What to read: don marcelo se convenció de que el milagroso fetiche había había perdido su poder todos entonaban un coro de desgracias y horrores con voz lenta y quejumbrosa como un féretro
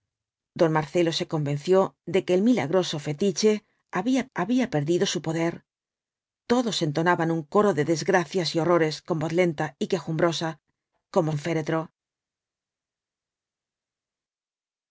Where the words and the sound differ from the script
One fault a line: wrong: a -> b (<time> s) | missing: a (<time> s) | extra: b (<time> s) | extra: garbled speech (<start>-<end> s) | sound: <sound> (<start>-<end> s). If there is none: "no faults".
no faults